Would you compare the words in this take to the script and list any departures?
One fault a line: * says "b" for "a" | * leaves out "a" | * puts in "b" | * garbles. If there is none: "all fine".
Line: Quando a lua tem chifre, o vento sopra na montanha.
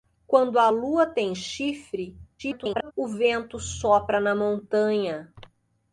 * garbles